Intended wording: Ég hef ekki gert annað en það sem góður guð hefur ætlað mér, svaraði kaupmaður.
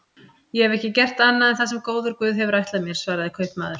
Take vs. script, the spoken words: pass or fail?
pass